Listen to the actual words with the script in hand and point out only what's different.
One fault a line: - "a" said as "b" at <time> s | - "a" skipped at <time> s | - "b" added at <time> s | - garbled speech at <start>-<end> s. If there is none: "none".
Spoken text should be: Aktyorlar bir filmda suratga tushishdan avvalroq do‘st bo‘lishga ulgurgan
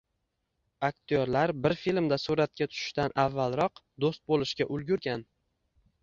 none